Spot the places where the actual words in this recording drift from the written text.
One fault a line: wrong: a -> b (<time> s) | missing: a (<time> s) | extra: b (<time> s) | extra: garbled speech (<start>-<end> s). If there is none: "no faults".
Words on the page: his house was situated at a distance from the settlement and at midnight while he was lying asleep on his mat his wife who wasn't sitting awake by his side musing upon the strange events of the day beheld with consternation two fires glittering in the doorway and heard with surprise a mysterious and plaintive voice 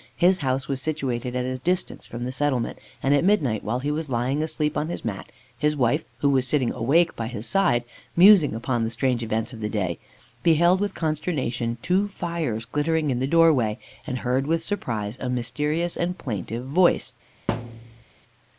wrong: wasn't -> was (6.3 s)